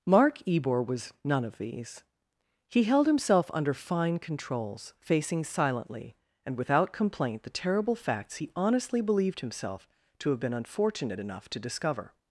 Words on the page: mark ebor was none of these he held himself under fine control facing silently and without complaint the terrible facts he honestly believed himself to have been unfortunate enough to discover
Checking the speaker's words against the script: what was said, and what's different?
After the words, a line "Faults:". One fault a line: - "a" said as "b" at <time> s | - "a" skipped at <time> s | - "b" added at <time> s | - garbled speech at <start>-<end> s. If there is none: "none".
mark ebor was none of these he held himself under fine controls facing silently and without complaint the terrible facts he honestly believed himself to have been unfortunate enough to discover
Faults:
- "control" said as "controls" at 4.2 s